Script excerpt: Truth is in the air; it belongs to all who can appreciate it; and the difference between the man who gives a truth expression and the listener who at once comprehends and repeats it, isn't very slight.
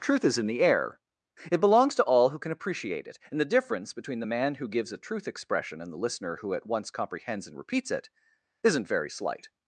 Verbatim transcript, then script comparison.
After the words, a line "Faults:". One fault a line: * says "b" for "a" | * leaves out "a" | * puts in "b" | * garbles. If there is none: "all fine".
Truth is in the air; it belongs to all who can appreciate it; and the difference between the man who gives a truth expression and the listener who at once comprehends and repeats it, isn't very slight.
Faults:
all fine